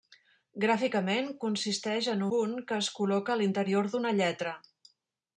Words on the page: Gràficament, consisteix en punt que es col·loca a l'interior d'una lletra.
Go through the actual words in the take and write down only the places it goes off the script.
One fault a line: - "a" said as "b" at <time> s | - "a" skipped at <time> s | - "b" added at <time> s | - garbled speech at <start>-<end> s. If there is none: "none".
none